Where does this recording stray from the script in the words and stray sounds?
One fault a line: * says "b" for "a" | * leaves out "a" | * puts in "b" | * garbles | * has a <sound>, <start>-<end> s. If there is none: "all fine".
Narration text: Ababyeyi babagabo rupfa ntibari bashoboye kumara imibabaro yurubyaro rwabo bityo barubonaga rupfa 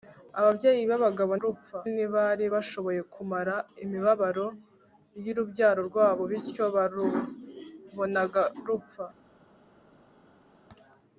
all fine